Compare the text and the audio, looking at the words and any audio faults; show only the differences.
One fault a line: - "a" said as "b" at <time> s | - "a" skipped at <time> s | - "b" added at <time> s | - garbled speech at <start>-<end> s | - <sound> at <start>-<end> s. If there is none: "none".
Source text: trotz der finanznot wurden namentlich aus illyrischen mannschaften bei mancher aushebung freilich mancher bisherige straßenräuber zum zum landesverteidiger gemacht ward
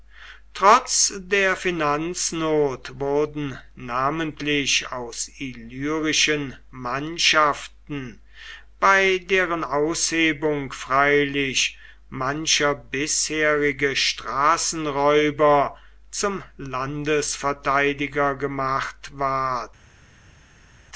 - "mancher" said as "deren" at 9.2 s
- "zum" skipped at 16.4 s